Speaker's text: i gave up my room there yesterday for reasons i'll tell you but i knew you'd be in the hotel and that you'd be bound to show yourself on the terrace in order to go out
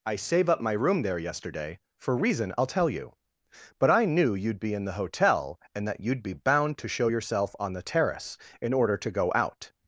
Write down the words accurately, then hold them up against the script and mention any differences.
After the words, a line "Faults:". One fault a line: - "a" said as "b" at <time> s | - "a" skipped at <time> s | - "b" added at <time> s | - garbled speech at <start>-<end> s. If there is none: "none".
i save up my room there yesterday for reason i'll tell you but i knew you'd be in the hotel and that you'd be bound to show yourself on the terrace in order to go out
Faults:
- "gave" said as "save" at 0.1 s
- "reasons" said as "reason" at 2.2 s